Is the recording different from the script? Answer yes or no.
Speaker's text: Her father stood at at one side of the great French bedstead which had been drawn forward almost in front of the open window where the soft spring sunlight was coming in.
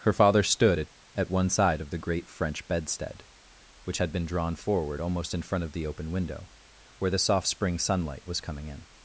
no